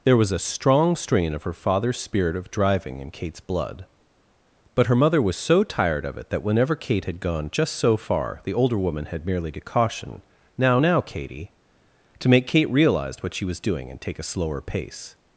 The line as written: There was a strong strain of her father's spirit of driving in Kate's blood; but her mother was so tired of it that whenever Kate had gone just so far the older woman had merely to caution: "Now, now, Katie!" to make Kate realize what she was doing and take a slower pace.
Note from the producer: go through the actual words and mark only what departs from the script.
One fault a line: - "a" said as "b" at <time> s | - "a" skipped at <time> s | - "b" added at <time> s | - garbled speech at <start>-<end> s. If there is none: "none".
none